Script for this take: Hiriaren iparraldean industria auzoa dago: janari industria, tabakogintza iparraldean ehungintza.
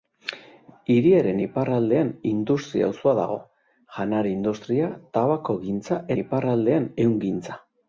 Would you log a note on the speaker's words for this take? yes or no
no